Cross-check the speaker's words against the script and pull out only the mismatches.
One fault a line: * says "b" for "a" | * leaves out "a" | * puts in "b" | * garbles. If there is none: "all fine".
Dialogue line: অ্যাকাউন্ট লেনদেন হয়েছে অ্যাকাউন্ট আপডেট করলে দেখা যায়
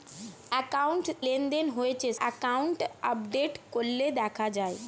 all fine